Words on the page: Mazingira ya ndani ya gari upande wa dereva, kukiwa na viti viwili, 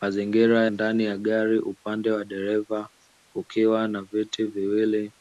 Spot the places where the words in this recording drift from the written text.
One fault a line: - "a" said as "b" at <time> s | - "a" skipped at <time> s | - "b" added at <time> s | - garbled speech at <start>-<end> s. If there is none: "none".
- "ya" skipped at 0.7 s